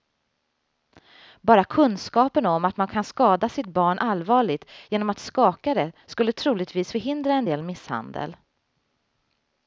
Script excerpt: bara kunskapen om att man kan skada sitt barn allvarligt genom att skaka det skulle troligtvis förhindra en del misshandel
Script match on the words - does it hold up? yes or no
yes